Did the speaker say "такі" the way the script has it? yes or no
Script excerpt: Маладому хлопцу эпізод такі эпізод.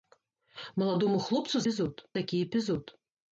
yes